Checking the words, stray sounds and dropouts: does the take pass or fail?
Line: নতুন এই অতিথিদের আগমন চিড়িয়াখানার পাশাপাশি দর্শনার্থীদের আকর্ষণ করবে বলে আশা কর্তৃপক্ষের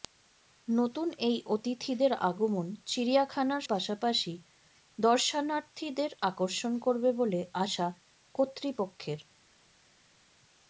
pass